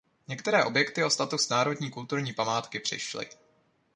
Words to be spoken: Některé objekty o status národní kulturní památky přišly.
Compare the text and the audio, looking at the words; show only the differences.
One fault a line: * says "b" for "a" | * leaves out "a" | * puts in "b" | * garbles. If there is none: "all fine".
all fine